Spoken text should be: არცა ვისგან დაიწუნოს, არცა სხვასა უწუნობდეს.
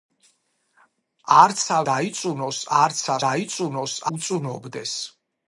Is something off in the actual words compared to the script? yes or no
yes